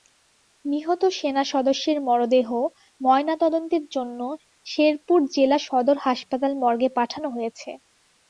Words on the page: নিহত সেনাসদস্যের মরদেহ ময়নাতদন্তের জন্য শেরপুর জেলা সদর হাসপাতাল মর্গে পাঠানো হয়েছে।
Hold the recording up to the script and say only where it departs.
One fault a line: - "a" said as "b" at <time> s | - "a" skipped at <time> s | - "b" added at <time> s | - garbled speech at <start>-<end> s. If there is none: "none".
none